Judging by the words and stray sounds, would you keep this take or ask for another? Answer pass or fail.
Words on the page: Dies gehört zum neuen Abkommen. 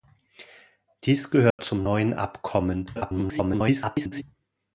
fail